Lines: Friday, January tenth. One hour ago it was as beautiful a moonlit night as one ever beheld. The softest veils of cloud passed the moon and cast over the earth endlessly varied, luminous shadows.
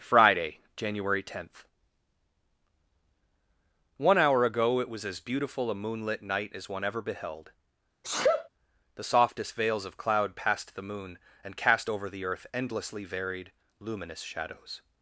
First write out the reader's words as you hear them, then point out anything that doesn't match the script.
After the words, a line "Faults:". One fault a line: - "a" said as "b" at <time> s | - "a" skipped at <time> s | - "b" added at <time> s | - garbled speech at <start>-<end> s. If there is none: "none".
Friday, January tenth. One hour ago it was as beautiful a moonlit night as one ever beheld. The softest veils of cloud passed the moon and cast over the earth endlessly varied, luminous shadows.
Faults:
none